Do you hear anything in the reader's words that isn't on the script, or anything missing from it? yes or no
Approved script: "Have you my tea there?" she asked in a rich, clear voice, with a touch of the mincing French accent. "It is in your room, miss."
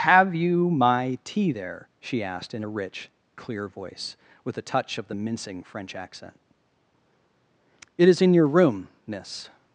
no